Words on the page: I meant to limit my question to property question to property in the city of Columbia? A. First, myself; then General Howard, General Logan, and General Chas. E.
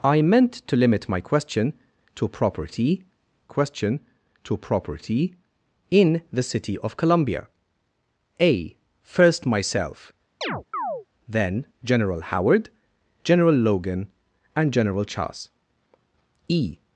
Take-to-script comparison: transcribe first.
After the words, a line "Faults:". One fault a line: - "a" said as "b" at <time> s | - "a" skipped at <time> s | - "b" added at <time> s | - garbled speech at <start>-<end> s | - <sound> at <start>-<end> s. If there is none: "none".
I meant to limit my question to property question to property in the city of Columbia? A. First, myself; then General Howard, General Logan, and General Chas. E.
Faults:
- chirp at 10.4-11.1 s